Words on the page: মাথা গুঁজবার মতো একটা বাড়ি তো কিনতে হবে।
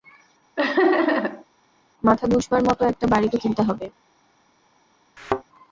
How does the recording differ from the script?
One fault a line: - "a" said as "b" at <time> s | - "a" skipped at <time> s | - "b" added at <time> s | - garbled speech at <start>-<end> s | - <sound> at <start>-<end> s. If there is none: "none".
- laugh at 0.6-1.4 s
- thud at 5.2-5.4 s